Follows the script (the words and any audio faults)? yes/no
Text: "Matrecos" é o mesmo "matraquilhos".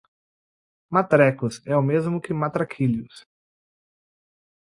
no